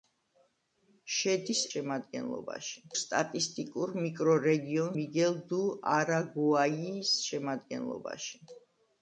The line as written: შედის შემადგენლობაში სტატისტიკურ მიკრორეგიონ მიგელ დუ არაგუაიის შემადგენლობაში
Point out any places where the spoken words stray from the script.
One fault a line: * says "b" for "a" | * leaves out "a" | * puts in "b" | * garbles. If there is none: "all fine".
all fine